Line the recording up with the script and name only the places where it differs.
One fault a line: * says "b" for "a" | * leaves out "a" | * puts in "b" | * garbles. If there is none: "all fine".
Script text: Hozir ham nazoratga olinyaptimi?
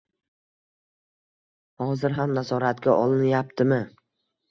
all fine